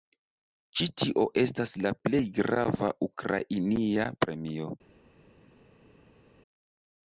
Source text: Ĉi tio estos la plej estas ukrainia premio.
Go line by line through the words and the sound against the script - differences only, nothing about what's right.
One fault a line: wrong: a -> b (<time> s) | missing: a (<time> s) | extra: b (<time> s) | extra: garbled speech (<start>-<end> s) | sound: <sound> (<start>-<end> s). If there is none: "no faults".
wrong: estos -> estas (1.4 s)
wrong: estas -> grava (2.4 s)